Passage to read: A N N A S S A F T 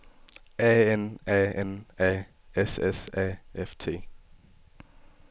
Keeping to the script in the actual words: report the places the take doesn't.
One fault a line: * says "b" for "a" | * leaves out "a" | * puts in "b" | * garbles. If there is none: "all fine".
* puts in "A"